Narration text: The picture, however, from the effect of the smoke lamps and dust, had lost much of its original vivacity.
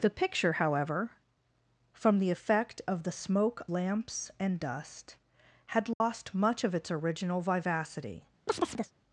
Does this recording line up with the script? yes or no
yes